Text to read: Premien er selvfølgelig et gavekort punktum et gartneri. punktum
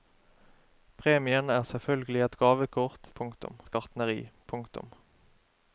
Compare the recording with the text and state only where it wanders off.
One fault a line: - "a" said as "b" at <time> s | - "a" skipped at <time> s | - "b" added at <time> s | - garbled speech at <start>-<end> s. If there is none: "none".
none